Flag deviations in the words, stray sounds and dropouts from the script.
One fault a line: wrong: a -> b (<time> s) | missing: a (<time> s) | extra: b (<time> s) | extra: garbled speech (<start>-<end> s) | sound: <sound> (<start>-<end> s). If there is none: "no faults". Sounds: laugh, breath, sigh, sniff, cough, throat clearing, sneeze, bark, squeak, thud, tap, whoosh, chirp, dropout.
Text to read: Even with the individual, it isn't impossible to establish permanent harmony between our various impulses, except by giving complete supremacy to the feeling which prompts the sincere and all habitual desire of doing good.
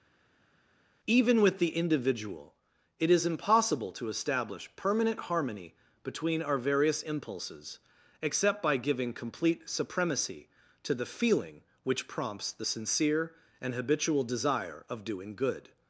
wrong: isn't -> is (3.1 s)
missing: all (13.7 s)